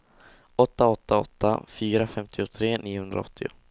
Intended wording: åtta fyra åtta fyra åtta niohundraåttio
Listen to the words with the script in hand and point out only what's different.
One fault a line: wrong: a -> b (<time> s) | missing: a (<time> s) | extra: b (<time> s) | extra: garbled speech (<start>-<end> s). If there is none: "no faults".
wrong: fyra -> åtta (0.9 s)
wrong: åtta -> femtiotre (2.1 s)